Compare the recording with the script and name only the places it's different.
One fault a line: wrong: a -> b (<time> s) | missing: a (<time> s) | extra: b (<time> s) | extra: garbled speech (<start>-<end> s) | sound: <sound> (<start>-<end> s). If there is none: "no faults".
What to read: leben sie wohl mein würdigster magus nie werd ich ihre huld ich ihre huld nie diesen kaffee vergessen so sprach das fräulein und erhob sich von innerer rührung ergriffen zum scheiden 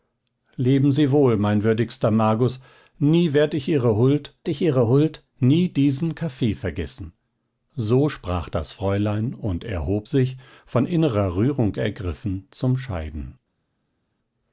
no faults